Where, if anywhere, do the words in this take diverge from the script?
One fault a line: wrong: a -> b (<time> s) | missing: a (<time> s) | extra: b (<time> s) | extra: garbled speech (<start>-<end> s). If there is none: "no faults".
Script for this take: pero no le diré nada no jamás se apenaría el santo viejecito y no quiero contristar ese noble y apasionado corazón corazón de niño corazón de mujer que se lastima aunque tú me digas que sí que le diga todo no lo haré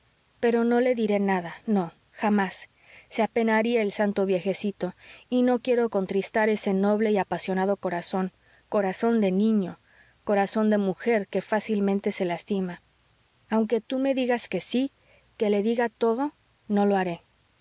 extra: fácilmente (11.4 s)